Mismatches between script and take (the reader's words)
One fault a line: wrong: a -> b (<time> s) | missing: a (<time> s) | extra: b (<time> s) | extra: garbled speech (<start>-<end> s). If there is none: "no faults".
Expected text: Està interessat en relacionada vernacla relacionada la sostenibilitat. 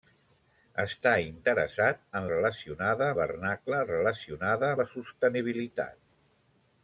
no faults